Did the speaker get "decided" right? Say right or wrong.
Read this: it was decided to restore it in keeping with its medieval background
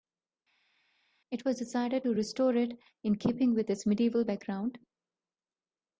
right